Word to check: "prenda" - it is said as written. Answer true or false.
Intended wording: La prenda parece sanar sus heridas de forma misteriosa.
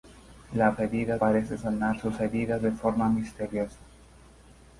false